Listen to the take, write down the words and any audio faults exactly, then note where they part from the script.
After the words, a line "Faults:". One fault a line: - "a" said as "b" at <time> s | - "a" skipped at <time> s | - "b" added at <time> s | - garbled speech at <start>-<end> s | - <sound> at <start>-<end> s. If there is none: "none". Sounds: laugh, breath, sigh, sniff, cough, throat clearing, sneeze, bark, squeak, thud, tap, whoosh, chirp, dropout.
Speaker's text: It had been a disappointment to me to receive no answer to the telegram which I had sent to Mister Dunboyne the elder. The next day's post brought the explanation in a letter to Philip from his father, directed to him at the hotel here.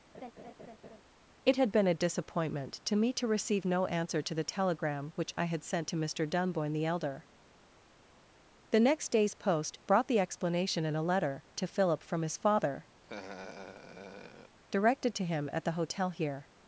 It had been a disappointment to me to receive no answer to the telegram which I had sent to Mister Dunboyne the elder. The next day's post brought the explanation in a letter to Philip from his father, directed to him at the hotel here.
Faults:
- laugh at 0.1-1.0 s
- laugh at 13.0-14.6 s